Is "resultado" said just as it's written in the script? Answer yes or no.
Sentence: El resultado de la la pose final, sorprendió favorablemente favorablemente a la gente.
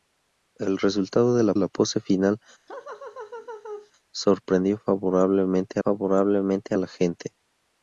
yes